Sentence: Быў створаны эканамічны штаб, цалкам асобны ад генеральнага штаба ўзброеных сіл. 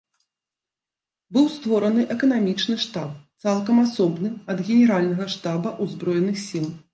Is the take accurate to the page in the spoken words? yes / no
yes